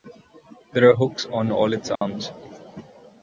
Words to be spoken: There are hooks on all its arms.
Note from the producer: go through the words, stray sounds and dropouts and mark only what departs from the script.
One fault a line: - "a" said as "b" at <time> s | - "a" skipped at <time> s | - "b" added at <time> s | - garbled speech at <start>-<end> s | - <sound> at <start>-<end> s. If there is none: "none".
- dropout at 2.0-2.0 s